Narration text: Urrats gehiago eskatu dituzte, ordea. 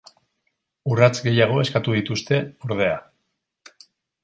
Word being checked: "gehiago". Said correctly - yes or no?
yes